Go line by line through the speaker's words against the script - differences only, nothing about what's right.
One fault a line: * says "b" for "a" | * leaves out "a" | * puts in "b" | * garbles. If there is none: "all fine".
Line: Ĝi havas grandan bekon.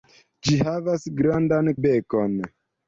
all fine